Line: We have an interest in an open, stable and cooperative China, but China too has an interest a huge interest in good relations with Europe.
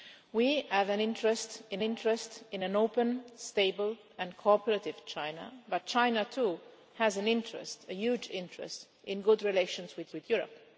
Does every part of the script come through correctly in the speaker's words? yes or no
no